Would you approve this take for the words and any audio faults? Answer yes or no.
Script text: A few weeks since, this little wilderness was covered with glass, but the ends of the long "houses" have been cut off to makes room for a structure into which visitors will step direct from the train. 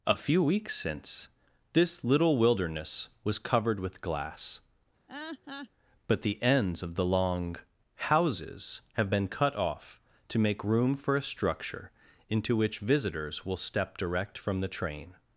no